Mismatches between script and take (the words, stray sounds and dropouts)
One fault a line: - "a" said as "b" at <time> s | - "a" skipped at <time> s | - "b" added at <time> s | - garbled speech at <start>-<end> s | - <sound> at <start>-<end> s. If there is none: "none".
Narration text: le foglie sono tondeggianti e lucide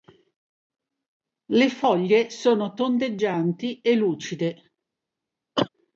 - cough at 5.6-5.7 s